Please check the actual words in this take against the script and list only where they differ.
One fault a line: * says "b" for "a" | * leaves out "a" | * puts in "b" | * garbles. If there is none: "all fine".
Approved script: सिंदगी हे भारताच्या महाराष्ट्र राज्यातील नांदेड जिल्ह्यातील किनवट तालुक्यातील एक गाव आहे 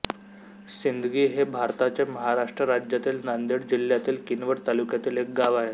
all fine